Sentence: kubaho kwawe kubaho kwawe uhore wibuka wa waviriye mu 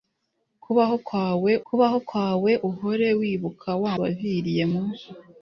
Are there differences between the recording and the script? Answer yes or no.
no